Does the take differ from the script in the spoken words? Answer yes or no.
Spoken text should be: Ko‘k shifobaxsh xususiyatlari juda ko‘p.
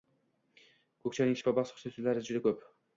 yes